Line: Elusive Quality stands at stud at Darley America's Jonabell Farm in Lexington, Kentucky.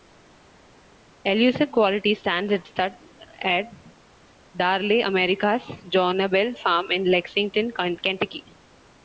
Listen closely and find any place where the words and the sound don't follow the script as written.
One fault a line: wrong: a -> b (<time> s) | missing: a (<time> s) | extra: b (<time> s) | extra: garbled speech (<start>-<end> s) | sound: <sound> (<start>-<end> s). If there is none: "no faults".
no faults